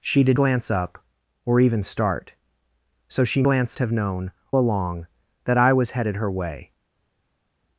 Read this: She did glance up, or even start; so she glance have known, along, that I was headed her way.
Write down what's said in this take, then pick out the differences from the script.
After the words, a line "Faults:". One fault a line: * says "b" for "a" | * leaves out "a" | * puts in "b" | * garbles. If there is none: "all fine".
She did glance up, or even start; so she glance have known, along, that I was headed her way.
Faults:
all fine